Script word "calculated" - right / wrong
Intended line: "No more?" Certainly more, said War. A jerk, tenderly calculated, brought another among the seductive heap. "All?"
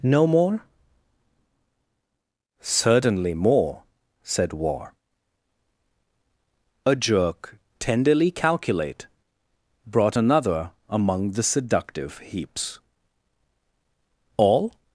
wrong